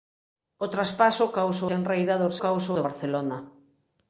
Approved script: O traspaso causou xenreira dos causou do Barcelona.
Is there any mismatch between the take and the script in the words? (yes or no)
no